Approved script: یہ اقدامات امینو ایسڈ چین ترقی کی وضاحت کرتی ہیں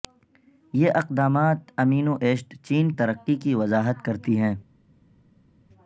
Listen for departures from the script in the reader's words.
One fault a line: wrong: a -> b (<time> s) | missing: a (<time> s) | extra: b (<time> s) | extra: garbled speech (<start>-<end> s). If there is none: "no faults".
no faults